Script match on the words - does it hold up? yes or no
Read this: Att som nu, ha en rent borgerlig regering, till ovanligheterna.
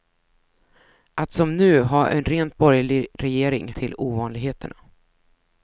yes